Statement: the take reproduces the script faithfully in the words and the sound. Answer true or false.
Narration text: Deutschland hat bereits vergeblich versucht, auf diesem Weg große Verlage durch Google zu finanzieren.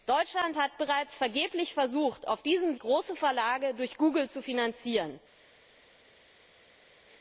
false